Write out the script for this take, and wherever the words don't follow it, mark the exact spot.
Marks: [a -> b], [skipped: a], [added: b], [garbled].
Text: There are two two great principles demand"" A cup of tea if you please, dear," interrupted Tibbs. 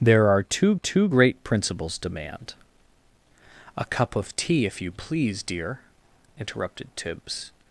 There are two two great principles demand"" A cup of tea if you please, dear," interrupted Tibbs.